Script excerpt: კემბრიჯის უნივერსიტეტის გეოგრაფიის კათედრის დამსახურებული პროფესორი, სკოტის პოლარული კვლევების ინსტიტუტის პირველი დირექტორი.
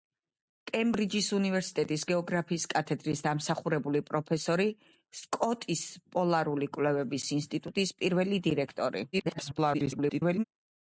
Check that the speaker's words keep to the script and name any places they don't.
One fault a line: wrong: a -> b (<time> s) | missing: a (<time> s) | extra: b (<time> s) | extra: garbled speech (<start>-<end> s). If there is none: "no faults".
extra: garbled speech (9.1-10.4 s)